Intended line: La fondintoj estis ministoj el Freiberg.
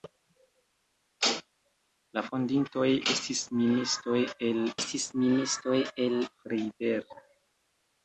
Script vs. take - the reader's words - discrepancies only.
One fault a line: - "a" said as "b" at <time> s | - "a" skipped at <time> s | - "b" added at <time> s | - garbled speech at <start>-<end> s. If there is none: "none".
- "estis ministoj el" added at 4.8 s